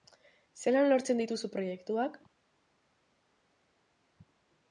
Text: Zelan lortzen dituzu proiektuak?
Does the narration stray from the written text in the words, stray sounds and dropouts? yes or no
no